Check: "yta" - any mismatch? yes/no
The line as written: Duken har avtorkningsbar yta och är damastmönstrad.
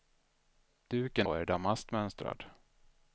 yes